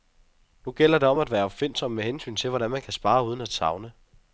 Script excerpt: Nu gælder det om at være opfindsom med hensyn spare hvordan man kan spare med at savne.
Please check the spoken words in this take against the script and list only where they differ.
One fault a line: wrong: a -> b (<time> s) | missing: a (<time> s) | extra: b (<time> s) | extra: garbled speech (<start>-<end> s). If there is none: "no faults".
wrong: spare -> til (2.4 s)
wrong: med -> uden (3.2 s)